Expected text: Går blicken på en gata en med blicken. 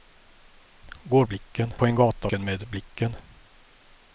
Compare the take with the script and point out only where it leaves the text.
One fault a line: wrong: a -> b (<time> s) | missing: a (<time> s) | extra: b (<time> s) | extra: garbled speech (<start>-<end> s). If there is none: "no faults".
no faults